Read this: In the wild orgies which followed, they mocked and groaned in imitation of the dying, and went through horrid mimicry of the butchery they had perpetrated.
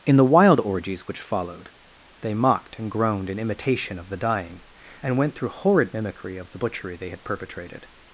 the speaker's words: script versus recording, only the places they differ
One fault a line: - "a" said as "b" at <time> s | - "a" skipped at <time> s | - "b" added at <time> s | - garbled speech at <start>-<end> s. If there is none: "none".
none